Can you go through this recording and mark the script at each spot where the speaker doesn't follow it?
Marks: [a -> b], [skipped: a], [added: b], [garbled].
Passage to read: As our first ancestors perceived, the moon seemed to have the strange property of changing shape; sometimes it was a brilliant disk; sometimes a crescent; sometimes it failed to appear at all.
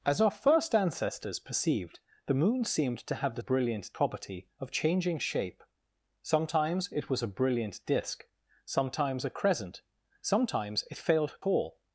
As our first ancestors perceived, the moon seemed to have the [strange -> brilliant] property of changing shape; sometimes it was a brilliant disk; sometimes a crescent; sometimes it failed [skipped: to appear at] all.